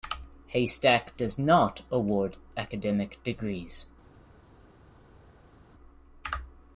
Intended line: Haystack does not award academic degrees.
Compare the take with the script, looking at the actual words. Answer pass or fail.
pass